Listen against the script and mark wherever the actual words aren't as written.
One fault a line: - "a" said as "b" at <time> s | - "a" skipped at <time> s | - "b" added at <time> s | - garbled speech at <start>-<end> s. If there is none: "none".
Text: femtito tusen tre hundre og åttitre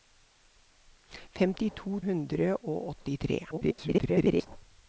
- "tusen tre" skipped at 2.0 s
- garbled speech at 3.5-4.5 s